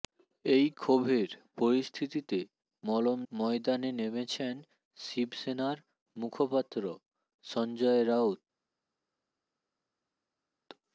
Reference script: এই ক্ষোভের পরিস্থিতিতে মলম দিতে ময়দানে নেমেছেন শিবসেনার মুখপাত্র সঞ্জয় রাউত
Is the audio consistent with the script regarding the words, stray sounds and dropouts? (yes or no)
no